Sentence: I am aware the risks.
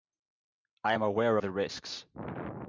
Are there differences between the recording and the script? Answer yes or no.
no